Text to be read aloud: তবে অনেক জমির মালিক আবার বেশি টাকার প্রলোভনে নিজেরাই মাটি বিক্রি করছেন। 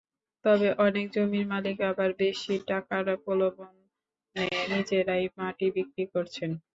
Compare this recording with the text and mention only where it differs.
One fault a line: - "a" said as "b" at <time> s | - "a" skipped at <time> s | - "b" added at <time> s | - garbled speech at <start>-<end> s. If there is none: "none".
none